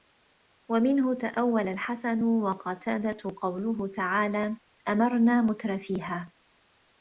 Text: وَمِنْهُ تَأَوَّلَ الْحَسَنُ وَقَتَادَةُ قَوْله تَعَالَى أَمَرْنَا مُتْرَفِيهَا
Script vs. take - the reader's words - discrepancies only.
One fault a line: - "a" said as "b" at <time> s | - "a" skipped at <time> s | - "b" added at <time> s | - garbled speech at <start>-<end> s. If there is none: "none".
none